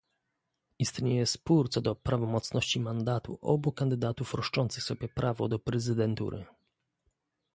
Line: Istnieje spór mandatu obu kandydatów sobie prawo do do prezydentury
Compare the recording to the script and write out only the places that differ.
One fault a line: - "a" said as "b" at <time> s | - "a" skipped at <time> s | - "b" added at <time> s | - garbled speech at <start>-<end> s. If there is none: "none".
- "co do prawomocności" added at 1.7 s
- "roszczących" added at 4.3 s
- "do" skipped at 5.6 s